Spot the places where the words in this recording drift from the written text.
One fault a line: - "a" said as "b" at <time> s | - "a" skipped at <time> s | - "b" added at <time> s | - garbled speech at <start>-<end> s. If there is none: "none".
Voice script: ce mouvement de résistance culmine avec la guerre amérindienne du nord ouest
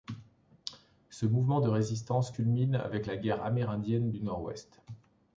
none